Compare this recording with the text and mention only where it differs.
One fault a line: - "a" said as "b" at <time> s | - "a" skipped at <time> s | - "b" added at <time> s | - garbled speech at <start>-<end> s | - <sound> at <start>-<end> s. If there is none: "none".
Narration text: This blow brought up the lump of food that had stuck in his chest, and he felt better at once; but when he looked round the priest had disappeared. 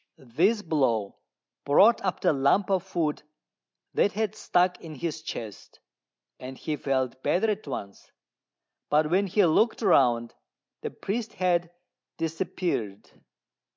none